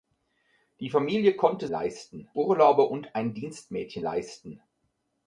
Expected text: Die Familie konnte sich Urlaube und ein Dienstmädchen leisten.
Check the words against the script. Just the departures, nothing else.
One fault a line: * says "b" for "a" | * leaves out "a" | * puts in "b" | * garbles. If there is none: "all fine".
* says "leisten" for "sich"